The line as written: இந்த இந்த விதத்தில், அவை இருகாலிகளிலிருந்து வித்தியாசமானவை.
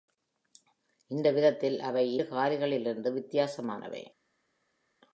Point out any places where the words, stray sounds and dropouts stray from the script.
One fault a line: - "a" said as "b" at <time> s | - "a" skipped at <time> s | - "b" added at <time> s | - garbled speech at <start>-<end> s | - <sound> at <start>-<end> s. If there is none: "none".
- "இந்த" skipped at 1.3 s